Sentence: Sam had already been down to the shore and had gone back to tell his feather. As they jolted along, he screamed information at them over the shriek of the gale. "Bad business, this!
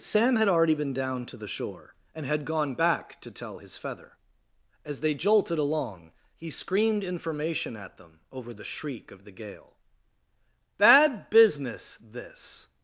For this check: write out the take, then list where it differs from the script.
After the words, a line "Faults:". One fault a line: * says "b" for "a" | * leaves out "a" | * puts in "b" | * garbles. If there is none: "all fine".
Sam had already been down to the shore and had gone back to tell his feather. As they jolted along, he screamed information at them over the shriek of the gale. "Bad business, this!
Faults:
all fine